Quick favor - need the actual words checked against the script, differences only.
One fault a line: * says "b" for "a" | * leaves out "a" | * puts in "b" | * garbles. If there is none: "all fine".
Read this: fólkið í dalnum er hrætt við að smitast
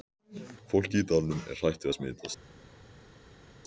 all fine